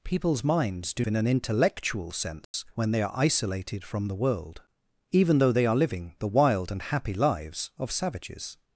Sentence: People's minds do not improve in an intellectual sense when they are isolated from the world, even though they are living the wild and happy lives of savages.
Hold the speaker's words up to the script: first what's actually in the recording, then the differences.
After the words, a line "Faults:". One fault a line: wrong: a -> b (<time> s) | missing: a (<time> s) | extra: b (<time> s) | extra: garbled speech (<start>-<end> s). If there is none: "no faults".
People's minds do in an intellectual sense when they are isolated from the world, even though they are living the wild and happy lives of savages.
Faults:
missing: not improve (1.1 s)